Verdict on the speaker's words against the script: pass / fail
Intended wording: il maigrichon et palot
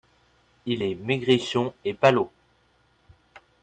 fail